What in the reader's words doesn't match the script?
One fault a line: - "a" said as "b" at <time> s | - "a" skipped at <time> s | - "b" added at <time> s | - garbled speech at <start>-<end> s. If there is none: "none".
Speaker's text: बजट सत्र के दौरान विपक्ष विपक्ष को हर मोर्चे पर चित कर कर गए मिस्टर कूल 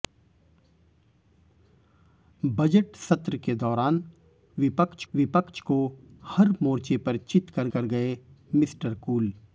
none